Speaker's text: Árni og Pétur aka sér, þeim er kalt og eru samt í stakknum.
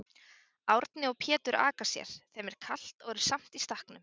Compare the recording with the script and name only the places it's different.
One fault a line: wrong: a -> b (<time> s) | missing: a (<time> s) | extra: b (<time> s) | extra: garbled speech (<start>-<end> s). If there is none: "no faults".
no faults